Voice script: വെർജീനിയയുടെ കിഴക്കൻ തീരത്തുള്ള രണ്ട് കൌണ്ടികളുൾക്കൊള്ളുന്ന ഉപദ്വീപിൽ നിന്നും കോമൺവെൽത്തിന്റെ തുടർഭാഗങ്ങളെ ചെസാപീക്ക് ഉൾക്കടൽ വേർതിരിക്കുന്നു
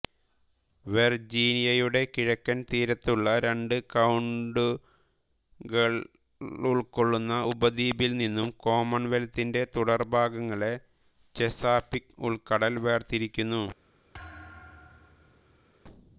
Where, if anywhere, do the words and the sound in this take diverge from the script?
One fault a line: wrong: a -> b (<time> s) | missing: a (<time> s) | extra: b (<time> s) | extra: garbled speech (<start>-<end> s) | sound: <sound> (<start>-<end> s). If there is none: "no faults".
sound: thud (14.1-15.7 s)